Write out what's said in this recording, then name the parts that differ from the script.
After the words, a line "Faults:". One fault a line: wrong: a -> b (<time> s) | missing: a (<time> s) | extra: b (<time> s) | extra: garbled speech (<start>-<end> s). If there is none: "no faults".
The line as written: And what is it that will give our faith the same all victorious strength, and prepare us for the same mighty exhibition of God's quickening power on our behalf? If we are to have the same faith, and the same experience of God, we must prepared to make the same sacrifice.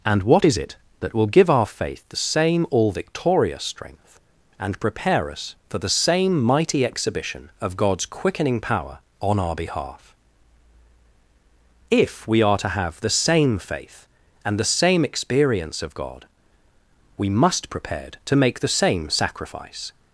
And what is it that will give our faith the same all victorious strength, and prepare us for the same mighty exhibition of God's quickening power on our behalf? If we are to have the same faith, and the same experience of God, we must prepared to make the same sacrifice.
Faults:
no faults